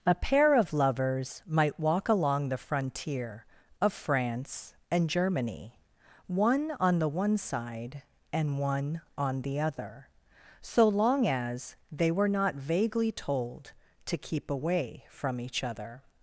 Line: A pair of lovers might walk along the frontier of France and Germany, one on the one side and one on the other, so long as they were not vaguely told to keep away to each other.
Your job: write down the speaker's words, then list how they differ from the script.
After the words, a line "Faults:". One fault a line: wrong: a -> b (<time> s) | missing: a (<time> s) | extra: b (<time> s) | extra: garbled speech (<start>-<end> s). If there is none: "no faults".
A pair of lovers might walk along the frontier of France and Germany, one on the one side and one on the other, so long as they were not vaguely told to keep away from each other.
Faults:
wrong: to -> from (15.1 s)